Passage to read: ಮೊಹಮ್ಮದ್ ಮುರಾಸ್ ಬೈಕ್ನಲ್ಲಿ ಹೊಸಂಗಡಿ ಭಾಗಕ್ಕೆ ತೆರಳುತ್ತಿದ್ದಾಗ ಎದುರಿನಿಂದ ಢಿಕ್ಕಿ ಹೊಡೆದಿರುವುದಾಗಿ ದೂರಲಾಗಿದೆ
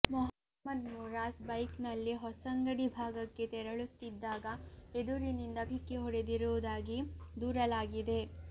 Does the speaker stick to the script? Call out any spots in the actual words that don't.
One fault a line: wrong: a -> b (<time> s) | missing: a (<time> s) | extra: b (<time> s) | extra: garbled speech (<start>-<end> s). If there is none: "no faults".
no faults